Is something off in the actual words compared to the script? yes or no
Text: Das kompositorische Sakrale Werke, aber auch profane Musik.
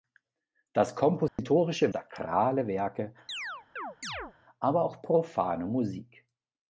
no